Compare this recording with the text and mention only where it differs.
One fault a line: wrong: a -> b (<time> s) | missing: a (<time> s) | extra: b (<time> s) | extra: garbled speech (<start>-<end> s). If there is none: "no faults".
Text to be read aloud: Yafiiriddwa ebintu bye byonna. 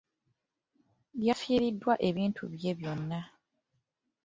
no faults